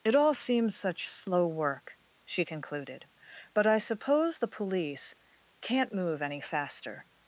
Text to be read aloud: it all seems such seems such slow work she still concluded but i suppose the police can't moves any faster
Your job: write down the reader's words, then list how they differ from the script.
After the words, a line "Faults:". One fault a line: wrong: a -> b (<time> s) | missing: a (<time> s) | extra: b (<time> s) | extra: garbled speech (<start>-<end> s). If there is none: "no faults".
it all seems such slow work she concluded but i suppose the police can't move any faster
Faults:
missing: seems such (1.1 s)
missing: still (2.4 s)
wrong: moves -> move (5.9 s)